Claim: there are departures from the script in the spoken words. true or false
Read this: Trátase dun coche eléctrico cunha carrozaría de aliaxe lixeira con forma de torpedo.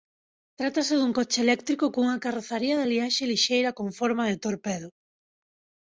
false